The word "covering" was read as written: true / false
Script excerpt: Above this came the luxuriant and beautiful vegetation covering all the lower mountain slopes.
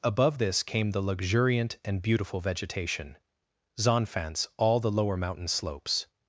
false